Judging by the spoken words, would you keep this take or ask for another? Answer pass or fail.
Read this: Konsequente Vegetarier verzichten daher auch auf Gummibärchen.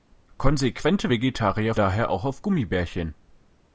fail